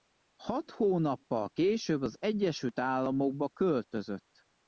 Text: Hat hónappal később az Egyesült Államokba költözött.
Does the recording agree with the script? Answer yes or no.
yes